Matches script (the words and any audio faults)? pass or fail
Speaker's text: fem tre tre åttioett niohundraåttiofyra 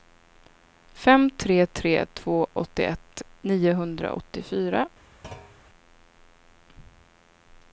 fail